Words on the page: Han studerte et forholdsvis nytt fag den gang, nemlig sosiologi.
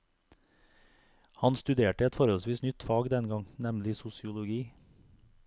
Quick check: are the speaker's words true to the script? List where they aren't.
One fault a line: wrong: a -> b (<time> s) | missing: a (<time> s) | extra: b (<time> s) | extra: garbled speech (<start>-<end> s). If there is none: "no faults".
no faults